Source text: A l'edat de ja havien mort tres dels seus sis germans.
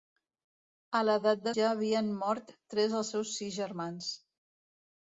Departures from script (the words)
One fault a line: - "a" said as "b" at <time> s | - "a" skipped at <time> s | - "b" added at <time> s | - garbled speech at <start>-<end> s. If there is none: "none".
none